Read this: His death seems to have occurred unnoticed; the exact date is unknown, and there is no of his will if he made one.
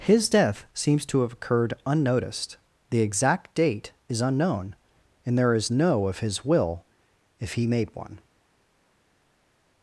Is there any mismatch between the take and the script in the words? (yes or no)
no